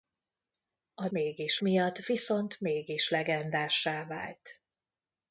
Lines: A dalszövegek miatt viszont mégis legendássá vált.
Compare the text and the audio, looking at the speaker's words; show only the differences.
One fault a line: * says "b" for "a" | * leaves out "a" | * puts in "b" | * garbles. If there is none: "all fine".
* says "mégis" for "dalszövegek"